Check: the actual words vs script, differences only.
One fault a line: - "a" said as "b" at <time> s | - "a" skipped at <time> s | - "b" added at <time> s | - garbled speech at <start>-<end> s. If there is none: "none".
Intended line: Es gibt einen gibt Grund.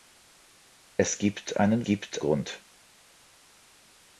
none